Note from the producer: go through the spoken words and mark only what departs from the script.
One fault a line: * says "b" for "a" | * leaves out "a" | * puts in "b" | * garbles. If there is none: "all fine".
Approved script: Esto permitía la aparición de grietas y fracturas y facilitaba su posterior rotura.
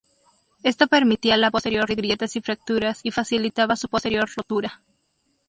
* says "posterior" for "aparición"